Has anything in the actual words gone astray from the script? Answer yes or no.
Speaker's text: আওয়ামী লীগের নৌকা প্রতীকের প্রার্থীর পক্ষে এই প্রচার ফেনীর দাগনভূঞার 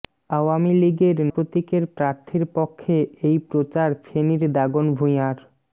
yes